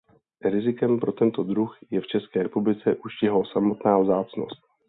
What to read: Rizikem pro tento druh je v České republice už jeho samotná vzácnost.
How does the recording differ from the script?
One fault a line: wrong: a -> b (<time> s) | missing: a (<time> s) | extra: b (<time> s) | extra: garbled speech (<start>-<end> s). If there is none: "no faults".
no faults